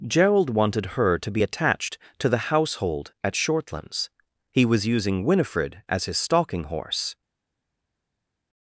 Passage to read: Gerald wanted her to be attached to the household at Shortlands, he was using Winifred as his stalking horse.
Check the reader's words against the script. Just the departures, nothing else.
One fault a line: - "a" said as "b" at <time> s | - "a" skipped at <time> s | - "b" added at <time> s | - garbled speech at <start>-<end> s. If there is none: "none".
none